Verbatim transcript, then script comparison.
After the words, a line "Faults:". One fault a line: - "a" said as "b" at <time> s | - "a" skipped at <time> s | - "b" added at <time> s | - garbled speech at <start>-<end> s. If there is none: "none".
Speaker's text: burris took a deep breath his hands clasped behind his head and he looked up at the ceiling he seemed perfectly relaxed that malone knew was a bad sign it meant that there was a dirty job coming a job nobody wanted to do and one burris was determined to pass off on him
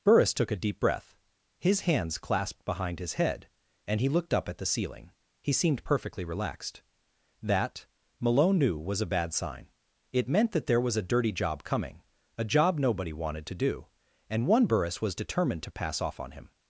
burris took a deep breath his hands clasped behind his head and he looked up at the ceiling he seemed perfectly relaxed that malone knew was a bad sign it meant that there was a dirty job coming a job nobody wanted to do and one burris was determined to pass off on him
Faults:
none